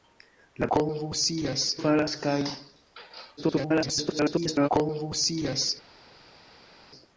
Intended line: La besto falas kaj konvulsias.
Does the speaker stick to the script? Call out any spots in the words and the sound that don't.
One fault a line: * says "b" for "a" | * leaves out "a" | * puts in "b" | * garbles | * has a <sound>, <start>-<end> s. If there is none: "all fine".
* says "konvulsias" for "besto"
* garbles